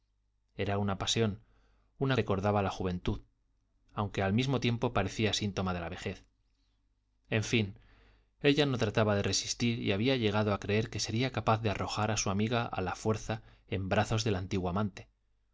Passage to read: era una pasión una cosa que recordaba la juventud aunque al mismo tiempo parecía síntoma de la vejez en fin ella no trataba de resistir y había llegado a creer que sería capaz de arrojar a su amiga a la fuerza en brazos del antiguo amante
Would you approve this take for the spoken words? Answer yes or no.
no